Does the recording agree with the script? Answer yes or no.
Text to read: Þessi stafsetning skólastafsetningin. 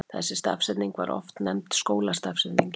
no